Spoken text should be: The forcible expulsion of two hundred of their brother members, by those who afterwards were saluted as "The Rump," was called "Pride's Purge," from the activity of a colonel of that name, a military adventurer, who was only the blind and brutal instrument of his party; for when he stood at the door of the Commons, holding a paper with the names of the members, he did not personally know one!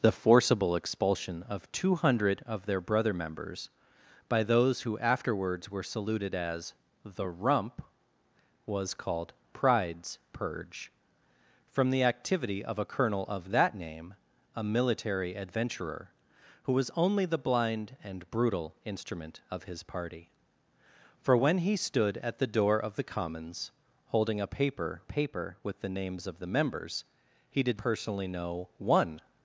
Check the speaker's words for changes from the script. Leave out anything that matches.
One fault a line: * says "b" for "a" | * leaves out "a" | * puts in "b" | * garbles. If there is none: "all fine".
* puts in "paper"
* leaves out "not"